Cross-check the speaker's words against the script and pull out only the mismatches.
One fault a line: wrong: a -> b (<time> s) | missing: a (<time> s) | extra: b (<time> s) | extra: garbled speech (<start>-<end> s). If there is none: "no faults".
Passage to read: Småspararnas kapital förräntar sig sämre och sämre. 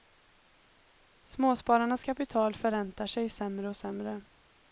no faults